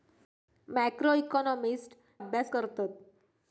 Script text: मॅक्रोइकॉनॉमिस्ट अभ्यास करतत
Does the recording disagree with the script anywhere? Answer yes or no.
no